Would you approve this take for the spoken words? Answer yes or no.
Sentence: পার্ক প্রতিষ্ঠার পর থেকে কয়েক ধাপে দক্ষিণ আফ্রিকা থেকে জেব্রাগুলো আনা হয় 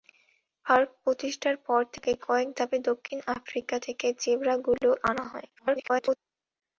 no